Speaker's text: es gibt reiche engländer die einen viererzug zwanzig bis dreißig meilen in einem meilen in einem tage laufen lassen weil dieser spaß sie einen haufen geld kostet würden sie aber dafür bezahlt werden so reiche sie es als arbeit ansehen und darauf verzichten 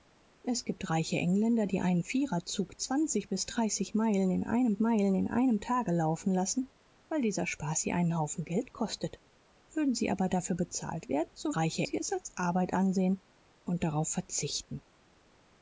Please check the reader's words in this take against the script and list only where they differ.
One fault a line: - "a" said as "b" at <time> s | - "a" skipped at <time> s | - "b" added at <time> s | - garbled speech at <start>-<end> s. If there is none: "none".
none